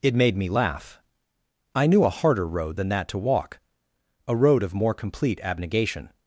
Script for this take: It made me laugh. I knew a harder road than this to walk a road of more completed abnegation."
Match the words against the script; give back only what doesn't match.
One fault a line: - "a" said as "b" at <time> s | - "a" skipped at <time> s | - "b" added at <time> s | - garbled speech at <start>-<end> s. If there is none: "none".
- "this" said as "that" at 2.9 s
- "completed" said as "complete" at 4.9 s